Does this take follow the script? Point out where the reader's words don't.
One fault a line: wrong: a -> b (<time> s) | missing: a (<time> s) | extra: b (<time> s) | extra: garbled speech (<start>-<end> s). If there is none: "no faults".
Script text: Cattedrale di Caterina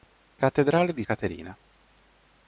no faults